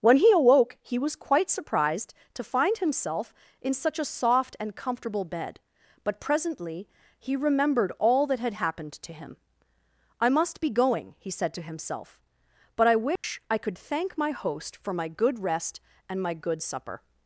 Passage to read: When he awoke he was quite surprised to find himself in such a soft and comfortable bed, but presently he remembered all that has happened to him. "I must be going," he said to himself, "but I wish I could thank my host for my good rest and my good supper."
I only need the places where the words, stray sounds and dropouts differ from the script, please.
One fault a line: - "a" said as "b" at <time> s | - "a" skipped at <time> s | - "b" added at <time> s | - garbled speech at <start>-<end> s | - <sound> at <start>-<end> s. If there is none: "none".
- "has" said as "had" at 8.4 s
- dropout at 13.2-13.2 s